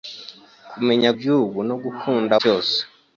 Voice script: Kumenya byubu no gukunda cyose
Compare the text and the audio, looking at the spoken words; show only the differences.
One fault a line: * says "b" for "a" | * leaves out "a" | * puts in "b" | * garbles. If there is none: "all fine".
all fine